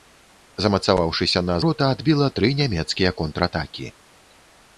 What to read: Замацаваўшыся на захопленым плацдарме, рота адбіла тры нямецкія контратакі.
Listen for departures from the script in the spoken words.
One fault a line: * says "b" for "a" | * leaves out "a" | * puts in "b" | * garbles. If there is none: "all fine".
* leaves out "захопленым плацдарме"